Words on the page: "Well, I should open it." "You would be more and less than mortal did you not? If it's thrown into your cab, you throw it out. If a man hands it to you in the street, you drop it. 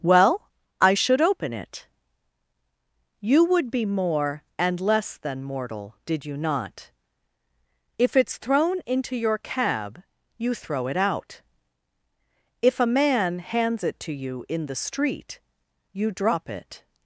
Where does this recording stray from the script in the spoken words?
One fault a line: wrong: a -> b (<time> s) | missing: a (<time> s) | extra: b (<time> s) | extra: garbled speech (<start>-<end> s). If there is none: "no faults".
no faults